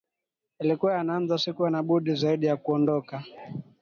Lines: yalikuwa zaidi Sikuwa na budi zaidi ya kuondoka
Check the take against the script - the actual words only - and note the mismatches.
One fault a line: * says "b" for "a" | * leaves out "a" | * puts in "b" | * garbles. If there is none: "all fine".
* says "yanaanza" for "zaidi"